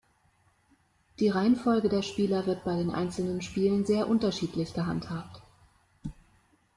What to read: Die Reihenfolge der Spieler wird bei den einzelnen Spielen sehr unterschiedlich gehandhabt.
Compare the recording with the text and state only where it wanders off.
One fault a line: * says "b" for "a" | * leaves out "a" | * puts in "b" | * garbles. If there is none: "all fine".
all fine